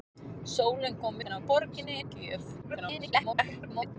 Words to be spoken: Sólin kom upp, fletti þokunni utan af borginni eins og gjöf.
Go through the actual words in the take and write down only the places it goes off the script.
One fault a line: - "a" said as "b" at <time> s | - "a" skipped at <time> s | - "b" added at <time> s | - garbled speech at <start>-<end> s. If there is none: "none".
- "upp fletti þokunni" skipped at 1.2 s
- "eins" skipped at 2.0 s
- garbled speech at 2.6-4.0 s